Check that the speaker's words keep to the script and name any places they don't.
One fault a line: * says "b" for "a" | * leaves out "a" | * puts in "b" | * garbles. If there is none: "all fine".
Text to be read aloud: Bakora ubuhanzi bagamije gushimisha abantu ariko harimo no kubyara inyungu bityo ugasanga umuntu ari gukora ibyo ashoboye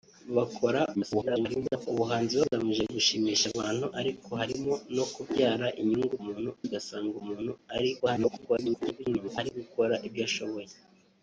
* garbles
* says "umuntu" for "bityo"
* garbles